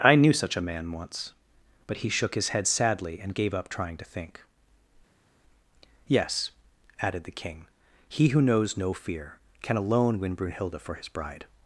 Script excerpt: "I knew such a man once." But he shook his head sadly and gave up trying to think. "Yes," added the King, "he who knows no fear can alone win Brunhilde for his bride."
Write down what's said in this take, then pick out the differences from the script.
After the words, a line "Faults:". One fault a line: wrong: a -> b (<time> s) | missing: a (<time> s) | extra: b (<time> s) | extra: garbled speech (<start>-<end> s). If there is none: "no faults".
"I knew such a man once." But he shook his head sadly and gave up trying to think. "Yes," added the King, "he who knows no fear can alone win Brunhilde for his bride."
Faults:
no faults